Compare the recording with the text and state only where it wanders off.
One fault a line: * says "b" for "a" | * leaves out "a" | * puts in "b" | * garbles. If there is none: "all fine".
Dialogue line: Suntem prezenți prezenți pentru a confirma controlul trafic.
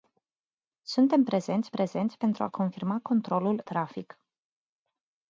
all fine